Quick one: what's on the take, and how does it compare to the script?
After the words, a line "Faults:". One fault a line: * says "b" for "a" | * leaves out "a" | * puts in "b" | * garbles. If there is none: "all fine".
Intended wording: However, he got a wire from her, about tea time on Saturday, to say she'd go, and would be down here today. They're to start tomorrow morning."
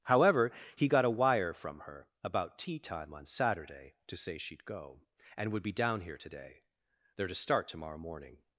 However, he got a wire from her, about tea time on Saturday, to say she'd go, and would be down here today. They're to start tomorrow morning."
Faults:
all fine